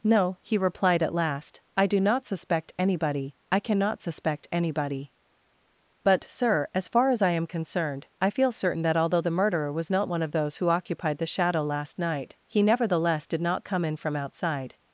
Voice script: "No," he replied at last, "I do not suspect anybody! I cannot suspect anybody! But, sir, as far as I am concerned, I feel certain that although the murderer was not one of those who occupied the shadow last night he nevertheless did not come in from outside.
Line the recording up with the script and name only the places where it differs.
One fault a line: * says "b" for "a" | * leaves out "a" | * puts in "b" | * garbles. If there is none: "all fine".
all fine